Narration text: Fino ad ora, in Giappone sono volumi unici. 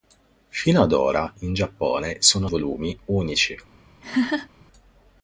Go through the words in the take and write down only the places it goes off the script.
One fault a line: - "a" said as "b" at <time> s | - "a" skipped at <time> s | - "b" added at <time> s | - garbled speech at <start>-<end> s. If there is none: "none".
none